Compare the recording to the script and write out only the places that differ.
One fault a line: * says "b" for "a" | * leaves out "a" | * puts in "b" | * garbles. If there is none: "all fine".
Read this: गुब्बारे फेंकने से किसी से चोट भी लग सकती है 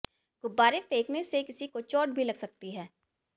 * says "को" for "से"